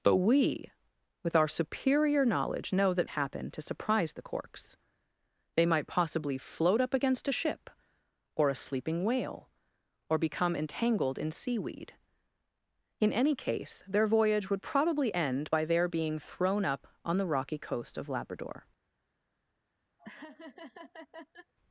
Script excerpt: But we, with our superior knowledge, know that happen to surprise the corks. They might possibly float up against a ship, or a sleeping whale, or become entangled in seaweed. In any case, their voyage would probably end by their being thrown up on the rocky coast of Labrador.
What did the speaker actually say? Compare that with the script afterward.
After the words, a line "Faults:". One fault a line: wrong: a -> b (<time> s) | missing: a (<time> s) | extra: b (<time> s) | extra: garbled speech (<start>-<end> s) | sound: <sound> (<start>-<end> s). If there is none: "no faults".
But we, with our superior knowledge, know that happen to surprise the corks. They might possibly float up against a ship, or a sleeping whale, or become entangled in seaweed. In any case, their voyage would probably end by their being thrown up on the rocky coast of Labrador.
Faults:
sound: laugh (20.0-21.5 s)